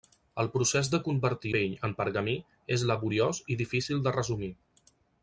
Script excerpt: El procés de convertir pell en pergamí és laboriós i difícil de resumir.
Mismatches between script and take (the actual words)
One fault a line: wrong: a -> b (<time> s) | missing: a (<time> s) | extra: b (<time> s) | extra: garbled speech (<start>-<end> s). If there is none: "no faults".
no faults